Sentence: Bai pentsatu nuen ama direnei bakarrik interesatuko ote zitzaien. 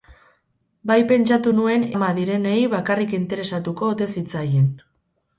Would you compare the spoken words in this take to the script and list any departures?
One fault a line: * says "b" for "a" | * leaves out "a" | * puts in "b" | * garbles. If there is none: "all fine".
all fine